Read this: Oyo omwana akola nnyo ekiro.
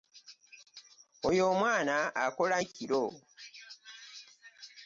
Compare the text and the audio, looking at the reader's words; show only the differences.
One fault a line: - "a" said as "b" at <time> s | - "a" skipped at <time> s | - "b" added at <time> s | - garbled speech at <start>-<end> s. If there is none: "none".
- "nnyo" skipped at 2.6 s